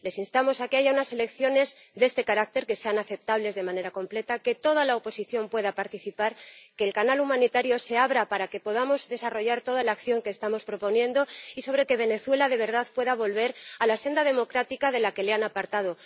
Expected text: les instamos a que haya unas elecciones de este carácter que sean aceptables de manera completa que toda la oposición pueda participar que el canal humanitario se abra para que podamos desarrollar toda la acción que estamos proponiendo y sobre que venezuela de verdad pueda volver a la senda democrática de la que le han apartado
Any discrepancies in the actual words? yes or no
no